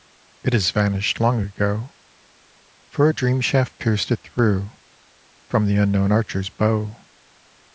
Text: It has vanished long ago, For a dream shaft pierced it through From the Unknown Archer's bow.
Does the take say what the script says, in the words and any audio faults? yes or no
yes